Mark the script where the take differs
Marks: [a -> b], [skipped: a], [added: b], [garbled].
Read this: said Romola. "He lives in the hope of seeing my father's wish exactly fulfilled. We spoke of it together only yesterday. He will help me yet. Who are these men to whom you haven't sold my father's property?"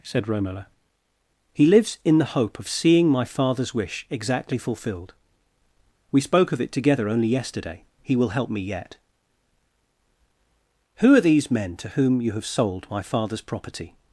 said Romola. "He lives in the hope of seeing my father's wish exactly fulfilled. We spoke of it together only yesterday. He will help me yet. Who are these men to whom you [haven't -> have] sold my father's property?"